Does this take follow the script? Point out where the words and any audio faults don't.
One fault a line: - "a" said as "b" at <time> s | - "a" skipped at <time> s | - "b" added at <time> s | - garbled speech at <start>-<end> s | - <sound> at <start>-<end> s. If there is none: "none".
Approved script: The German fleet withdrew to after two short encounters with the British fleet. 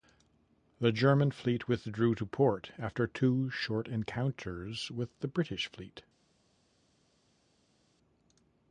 - "port" added at 2.3 s